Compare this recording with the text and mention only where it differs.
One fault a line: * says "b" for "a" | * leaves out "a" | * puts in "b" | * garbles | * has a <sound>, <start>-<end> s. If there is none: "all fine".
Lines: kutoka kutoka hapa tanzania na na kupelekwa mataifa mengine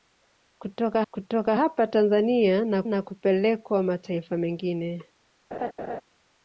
* has a laugh, 5.5-6.0 s